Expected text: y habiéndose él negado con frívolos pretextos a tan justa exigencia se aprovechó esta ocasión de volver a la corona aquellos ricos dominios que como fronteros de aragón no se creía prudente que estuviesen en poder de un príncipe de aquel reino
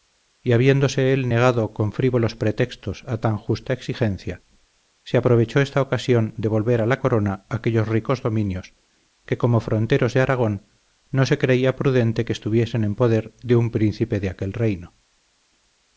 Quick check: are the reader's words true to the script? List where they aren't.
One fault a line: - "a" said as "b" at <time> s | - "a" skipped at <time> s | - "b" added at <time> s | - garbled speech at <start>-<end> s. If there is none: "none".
none